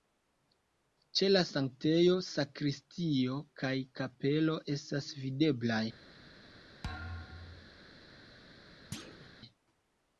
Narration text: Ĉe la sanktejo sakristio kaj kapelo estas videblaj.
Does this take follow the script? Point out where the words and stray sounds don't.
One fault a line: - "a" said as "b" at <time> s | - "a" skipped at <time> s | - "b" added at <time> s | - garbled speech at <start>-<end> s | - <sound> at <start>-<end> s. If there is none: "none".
- thud at 6.8-7.8 s
- thud at 8.9-9.3 s